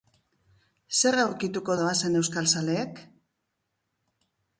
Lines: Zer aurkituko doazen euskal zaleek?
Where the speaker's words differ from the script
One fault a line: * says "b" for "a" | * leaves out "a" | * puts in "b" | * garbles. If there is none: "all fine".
all fine